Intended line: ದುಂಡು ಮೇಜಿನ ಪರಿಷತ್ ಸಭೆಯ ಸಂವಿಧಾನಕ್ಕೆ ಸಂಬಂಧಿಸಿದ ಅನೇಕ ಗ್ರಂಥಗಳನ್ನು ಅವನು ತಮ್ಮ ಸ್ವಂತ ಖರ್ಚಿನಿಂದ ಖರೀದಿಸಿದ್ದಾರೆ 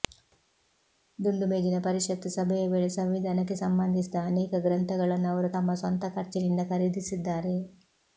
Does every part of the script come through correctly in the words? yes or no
no